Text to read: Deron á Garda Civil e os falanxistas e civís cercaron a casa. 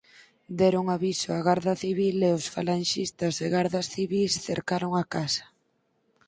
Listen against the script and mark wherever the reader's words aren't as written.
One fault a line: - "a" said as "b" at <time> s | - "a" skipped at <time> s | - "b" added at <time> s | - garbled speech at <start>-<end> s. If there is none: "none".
- "aviso" added at 0.9 s
- "gardas" added at 3.5 s